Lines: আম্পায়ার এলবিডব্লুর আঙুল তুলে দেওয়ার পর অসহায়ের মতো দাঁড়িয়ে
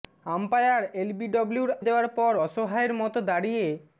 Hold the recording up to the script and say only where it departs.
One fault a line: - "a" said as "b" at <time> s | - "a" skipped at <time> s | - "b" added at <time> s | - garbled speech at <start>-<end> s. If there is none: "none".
- "আঙুল তুলে" skipped at 1.7 s